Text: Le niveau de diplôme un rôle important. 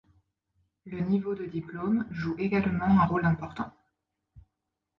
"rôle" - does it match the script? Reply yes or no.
yes